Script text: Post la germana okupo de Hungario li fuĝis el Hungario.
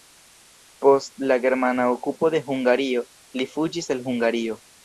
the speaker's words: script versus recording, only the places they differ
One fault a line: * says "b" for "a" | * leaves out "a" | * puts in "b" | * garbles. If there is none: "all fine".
all fine